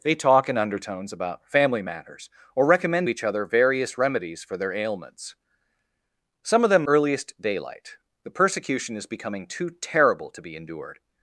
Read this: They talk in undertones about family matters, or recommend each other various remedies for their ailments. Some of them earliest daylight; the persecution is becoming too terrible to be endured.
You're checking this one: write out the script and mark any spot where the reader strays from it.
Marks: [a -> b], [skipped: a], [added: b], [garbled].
They talk in undertones about family matters, or recommend each other various remedies for their ailments. Some of them earliest daylight; the persecution is becoming too terrible to be endured.